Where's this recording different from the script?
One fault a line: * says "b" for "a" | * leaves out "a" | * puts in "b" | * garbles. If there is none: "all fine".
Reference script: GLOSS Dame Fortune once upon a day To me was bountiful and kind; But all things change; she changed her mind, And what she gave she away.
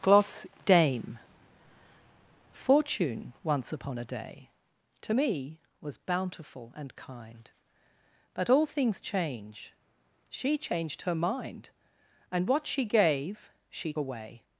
all fine